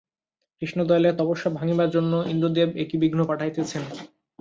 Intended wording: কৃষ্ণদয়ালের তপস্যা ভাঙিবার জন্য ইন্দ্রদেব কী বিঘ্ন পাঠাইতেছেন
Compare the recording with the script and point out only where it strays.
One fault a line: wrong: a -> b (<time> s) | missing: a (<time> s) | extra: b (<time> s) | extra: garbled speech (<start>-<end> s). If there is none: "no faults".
extra: এ (2.8 s)